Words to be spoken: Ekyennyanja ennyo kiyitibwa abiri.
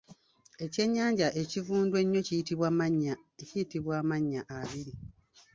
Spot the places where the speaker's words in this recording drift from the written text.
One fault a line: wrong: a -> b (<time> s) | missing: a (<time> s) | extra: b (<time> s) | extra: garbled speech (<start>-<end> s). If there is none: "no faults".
extra: ekivundu (1.4 s)
extra: amannya (4.0 s)